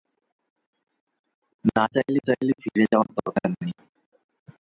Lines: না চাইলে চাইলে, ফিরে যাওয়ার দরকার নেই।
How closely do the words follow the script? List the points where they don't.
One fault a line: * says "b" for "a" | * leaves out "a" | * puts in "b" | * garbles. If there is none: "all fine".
all fine